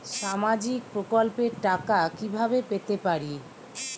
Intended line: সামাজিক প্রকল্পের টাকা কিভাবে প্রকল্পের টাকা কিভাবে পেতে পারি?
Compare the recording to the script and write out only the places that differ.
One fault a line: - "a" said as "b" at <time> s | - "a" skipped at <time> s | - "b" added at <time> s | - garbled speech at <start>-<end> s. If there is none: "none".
- "প্রকল্পের টাকা কিভাবে" skipped at 2.6 s